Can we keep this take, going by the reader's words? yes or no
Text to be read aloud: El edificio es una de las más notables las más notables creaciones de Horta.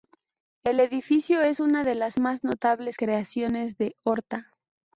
no